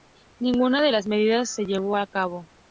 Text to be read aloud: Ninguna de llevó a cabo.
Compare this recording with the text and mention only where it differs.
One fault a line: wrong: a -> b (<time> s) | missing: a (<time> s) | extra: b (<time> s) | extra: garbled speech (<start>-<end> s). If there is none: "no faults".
extra: las medidas se (0.9 s)